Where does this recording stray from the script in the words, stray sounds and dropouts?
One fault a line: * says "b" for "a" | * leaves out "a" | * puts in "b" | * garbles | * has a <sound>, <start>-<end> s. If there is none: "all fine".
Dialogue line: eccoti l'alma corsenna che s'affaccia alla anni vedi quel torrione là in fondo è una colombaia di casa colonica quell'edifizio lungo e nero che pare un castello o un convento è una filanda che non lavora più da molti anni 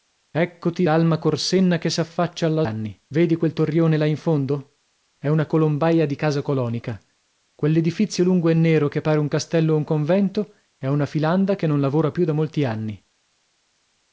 all fine